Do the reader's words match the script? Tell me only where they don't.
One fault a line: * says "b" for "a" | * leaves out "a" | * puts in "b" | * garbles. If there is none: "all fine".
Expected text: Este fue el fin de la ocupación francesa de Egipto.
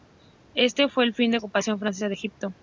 all fine